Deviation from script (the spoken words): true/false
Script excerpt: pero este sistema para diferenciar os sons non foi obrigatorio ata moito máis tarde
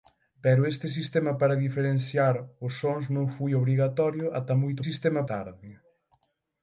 true